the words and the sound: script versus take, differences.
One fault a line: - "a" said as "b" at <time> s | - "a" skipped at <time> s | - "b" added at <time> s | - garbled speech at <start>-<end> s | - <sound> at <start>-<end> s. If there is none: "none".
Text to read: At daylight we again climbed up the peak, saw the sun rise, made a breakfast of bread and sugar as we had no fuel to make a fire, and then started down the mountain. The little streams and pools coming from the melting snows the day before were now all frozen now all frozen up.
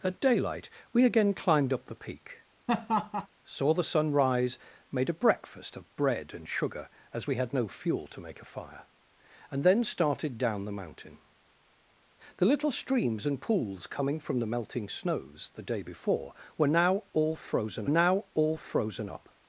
- laugh at 2.7-3.3 s